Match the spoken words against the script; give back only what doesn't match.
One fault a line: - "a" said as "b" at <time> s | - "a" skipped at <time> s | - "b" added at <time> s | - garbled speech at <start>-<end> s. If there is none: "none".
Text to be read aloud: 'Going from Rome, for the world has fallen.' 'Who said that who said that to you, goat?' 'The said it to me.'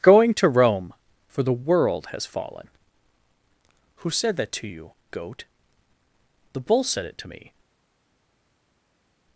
- "from" said as "to" at 0.3 s
- "who said that" skipped at 4.5 s
- "bull" added at 6.6 s